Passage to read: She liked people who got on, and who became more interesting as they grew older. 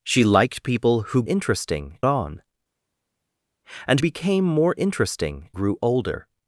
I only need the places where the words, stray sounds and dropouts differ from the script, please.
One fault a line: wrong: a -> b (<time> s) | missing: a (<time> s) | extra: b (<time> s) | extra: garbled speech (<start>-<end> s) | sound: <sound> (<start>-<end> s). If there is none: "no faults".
wrong: got -> interesting (1.3 s)
missing: who (4.0 s)
missing: as they (5.5 s)